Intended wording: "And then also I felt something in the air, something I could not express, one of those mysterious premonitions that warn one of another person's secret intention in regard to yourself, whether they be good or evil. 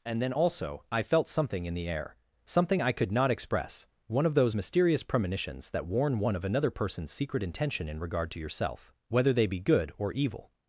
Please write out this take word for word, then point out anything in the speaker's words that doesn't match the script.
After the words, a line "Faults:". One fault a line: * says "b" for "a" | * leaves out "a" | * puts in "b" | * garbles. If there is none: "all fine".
"And then also I felt something in the air, something I could not express, one of those mysterious premonitions that warn one of another person's secret intention in regard to yourself, whether they be good or evil.
Faults:
all fine